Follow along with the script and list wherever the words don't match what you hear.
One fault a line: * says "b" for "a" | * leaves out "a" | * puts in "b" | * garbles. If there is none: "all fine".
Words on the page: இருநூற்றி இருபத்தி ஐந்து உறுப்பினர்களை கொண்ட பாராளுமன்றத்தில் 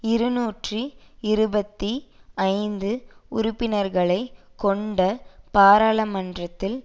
all fine